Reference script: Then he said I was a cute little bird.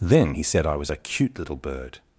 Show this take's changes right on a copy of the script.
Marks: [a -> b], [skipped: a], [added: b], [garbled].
Then he said I was a cute little bird.